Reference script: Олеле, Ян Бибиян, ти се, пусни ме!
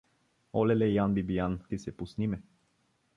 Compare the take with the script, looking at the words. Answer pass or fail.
pass